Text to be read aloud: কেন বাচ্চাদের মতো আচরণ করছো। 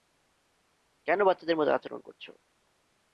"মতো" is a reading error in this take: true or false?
false